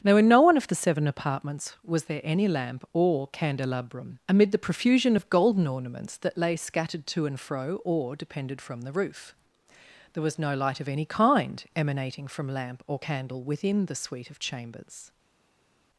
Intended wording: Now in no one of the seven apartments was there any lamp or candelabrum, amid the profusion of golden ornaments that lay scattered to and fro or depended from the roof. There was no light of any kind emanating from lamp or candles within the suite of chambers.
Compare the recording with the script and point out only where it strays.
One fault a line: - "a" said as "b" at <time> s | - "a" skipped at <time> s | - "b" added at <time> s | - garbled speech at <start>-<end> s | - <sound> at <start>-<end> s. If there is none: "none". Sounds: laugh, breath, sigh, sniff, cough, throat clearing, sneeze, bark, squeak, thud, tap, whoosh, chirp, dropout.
- "candles" said as "candle" at 13.0 s